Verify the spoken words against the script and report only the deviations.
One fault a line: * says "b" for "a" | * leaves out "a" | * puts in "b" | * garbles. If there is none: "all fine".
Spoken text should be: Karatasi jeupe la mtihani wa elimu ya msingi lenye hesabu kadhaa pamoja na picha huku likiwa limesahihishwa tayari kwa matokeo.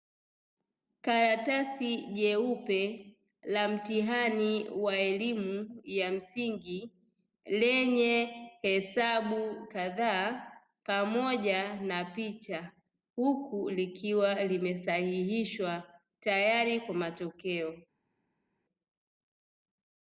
all fine